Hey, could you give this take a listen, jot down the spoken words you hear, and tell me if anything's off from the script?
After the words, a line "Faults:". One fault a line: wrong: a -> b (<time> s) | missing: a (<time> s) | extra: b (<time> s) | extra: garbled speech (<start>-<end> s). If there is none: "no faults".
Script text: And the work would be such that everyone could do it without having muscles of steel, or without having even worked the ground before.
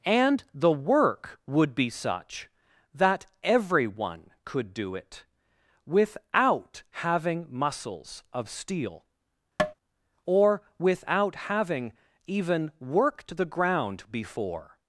And the work would be such that everyone could do it without having muscles of steel, or without having even worked the ground before.
Faults:
no faults